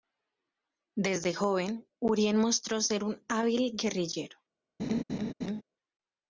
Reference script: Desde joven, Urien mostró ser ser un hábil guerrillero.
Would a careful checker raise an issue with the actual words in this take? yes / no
yes